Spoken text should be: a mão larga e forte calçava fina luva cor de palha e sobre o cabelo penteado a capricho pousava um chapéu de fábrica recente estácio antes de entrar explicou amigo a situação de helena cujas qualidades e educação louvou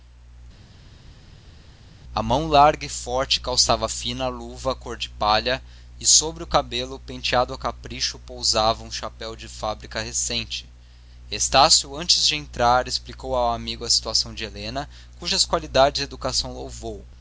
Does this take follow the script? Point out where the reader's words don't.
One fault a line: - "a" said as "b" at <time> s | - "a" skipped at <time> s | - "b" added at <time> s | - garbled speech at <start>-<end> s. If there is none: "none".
- "ao" added at 13.3 s